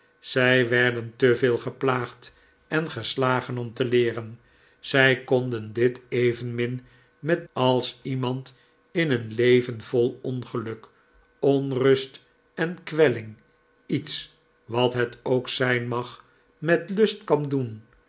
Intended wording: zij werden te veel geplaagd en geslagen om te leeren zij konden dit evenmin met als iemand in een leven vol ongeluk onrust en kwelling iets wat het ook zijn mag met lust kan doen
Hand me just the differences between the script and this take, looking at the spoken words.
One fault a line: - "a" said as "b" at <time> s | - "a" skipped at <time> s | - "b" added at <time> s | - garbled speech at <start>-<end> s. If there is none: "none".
none